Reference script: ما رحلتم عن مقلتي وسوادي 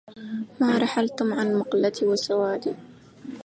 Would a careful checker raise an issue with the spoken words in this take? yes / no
no